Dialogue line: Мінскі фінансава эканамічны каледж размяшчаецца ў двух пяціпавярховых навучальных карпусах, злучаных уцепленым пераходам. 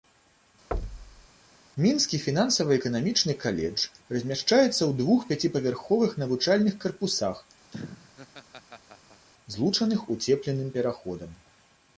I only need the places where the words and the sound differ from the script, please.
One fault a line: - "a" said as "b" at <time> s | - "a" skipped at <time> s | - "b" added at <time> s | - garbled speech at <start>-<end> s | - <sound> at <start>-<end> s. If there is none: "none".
- thud at 0.7-1.3 s
- laugh at 7.7-9.3 s